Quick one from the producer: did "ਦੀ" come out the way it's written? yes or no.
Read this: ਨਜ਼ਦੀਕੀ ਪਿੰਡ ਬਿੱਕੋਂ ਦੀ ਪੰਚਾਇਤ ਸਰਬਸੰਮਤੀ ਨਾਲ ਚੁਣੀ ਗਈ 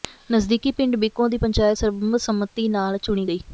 yes